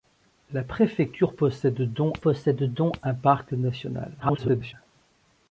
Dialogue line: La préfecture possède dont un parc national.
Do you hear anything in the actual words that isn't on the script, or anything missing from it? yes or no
yes